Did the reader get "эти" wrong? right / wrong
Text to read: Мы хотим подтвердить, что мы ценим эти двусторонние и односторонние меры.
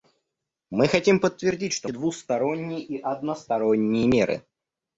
wrong